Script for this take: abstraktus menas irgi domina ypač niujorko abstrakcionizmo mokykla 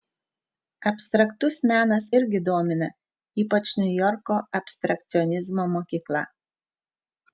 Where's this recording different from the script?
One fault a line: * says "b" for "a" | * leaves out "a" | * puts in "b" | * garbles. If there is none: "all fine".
all fine